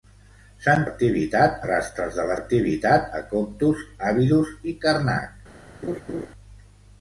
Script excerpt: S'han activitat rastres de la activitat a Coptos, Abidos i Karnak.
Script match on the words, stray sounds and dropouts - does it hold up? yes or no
no